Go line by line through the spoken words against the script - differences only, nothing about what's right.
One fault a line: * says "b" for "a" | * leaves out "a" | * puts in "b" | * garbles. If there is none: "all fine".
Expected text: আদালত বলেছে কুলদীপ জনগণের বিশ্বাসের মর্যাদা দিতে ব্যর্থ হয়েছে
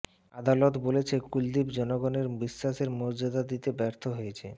all fine